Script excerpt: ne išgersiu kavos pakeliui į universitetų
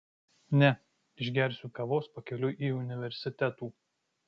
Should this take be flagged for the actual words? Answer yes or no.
no